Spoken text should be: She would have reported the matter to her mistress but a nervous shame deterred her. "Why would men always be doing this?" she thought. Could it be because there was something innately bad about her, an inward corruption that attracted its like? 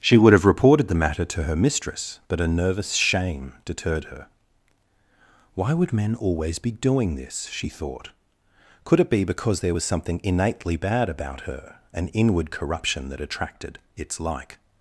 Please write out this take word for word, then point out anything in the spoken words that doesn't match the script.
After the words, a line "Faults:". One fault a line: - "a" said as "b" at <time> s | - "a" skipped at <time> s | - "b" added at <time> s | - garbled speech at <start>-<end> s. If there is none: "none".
She would have reported the matter to her mistress but a nervous shame deterred her. "Why would men always be doing this?" she thought. Could it be because there was something innately bad about her, an inward corruption that attracted its like?
Faults:
none